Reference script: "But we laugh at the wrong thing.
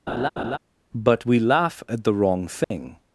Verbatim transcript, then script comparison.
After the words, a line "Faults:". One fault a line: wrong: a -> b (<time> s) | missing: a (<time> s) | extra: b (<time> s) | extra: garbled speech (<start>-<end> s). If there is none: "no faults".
"But we laugh at the wrong thing.
Faults:
no faults